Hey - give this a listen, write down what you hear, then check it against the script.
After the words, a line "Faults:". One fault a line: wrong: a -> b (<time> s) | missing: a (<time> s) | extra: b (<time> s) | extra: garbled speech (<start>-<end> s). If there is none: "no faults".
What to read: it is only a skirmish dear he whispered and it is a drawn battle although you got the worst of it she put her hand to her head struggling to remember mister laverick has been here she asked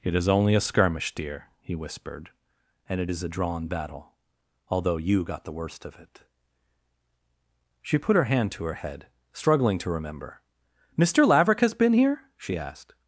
it is only a skirmish dear he whispered and it is a drawn battle although you got the worst of it she put her hand to her head struggling to remember mister laverick has been here she asked
Faults:
no faults